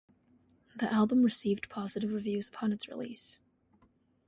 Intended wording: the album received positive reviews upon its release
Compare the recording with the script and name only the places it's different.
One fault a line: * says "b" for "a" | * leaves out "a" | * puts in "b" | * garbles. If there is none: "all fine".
all fine